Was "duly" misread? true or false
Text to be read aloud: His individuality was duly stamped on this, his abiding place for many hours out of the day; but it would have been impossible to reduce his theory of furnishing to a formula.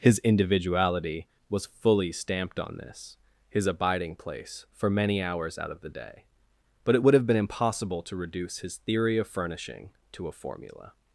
true